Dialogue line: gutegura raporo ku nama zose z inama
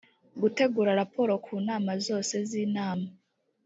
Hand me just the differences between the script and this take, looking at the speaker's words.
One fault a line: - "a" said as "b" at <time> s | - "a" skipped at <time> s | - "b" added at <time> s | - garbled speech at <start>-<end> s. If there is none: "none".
none